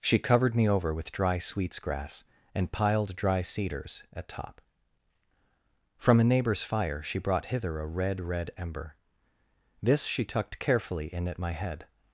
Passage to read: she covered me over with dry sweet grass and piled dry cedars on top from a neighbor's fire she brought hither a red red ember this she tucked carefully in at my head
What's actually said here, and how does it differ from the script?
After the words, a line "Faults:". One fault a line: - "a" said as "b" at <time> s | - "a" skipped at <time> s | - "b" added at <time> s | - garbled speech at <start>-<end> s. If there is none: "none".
she covered me over with dry sweets grass and piled dry cedars at top from a neighbor's fire she brought hither a red red ember this she tucked carefully in at my head
Faults:
- "sweet" said as "sweets" at 1.4 s
- "on" said as "at" at 4.1 s